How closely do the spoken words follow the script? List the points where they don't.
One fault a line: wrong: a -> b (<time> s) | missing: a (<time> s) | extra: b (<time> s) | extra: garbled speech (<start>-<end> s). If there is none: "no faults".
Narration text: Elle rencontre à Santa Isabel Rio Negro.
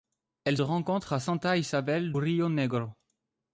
no faults